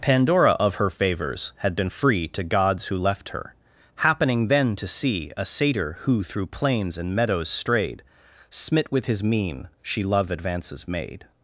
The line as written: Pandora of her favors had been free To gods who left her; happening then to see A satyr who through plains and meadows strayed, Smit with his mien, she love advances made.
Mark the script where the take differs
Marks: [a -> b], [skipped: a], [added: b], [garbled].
Pandora of her favors had been free To gods who left her; happening then to see A satyr who through plains and meadows strayed, Smit with his mien, she love advances made.